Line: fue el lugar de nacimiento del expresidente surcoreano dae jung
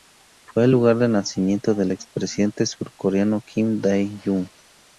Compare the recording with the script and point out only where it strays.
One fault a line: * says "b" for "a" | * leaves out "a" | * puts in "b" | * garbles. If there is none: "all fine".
* puts in "kim"